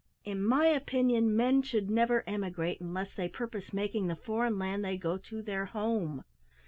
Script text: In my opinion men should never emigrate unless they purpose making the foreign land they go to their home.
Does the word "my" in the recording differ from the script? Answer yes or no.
no